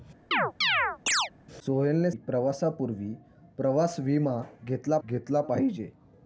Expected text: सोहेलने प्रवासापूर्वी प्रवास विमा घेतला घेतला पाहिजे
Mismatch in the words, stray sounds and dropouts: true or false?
true